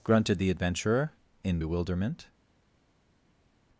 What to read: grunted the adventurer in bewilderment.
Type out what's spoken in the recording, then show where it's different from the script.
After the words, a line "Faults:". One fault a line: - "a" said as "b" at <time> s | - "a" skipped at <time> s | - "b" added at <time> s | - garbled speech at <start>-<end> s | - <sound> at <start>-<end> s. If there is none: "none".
grunted the adventurer in bewilderment.
Faults:
none